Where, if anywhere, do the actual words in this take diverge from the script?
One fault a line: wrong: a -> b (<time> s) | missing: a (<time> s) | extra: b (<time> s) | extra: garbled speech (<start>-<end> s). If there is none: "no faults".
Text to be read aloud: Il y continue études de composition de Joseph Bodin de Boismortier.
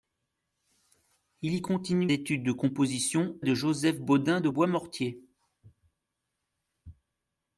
no faults